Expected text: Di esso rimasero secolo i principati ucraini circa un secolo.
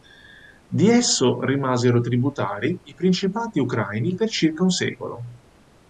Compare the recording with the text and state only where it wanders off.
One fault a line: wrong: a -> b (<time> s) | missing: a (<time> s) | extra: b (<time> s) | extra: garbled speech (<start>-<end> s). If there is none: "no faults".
wrong: secolo -> tributari (2.0 s)
extra: per (4.1 s)